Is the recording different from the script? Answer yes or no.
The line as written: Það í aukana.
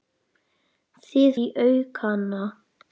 no